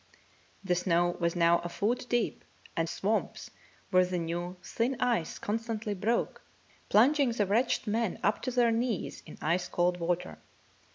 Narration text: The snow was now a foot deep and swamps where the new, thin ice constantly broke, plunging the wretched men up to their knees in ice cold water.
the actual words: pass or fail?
pass